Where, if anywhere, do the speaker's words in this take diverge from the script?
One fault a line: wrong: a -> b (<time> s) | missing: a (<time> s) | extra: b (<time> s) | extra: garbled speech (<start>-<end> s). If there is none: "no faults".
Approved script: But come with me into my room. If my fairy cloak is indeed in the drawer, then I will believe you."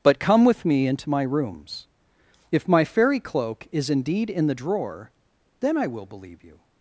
wrong: room -> rooms (1.2 s)